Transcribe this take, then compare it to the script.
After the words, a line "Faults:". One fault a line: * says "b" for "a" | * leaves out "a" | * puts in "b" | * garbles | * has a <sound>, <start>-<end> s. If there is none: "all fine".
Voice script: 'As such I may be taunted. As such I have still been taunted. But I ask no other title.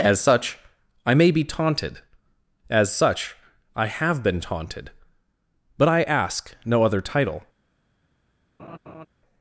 'As such I may be taunted. As such I have been taunted. But I ask no other title.
Faults:
* leaves out "still"
* has a laugh, 8.6-9.1 s